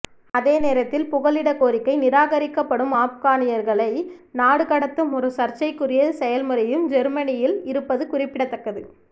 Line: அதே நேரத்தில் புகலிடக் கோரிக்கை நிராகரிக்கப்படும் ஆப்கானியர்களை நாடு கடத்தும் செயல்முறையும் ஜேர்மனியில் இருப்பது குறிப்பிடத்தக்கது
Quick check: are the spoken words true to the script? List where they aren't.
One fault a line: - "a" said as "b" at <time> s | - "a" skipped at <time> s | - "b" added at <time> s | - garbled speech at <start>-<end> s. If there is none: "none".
- "ஒரு சர்ச்சைக்குரிய" added at 5.2 s